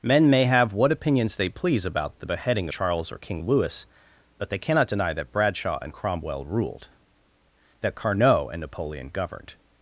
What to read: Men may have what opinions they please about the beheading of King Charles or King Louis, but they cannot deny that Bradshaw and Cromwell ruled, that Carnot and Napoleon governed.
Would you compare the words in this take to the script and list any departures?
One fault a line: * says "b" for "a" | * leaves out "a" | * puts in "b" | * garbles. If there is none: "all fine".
* leaves out "of King"